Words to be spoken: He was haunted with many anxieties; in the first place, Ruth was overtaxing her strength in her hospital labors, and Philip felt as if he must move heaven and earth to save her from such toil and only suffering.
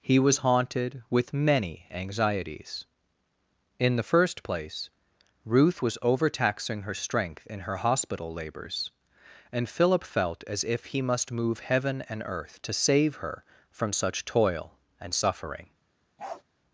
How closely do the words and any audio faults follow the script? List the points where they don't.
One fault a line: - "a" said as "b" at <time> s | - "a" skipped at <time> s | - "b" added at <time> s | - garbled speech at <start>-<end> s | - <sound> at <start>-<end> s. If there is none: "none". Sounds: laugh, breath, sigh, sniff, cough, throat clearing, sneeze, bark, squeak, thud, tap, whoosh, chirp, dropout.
- "only" skipped at 15.1 s
- bark at 16.2-16.4 s